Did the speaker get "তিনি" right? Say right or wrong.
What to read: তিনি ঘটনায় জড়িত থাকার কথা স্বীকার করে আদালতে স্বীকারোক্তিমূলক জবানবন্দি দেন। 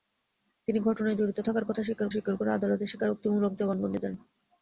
right